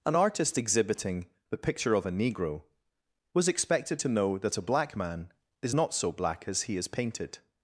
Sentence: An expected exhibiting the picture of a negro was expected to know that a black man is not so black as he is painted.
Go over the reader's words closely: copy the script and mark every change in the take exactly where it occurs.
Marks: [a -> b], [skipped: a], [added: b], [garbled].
An [expected -> artist] exhibiting the picture of a negro was expected to know that a black man is not so black as he is painted.